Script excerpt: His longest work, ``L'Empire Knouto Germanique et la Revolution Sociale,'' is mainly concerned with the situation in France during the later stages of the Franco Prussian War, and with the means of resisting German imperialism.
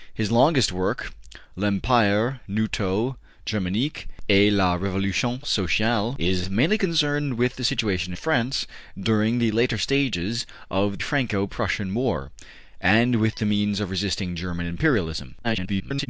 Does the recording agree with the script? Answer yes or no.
no